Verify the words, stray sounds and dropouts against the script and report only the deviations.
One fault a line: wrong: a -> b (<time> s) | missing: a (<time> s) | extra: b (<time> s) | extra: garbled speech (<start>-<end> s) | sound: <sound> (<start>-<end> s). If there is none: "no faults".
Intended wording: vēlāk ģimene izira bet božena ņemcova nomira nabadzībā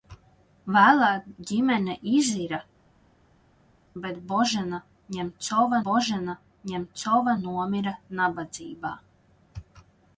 extra: božena ņemcova (5.9 s)